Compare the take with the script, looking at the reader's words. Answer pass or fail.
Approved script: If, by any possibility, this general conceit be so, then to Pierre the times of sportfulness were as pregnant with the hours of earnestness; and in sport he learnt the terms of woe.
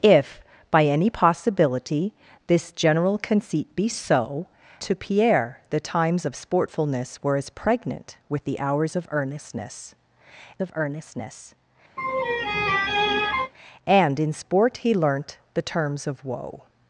fail